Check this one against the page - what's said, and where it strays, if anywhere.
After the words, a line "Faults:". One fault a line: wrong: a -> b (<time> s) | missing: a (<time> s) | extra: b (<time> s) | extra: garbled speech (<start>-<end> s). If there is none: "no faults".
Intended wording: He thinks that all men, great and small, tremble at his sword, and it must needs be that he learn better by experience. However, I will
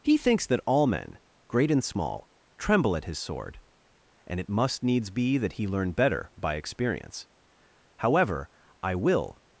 He thinks that all men, great and small, tremble at his sword, and it must needs be that he learn better by experience. However, I will
Faults:
no faults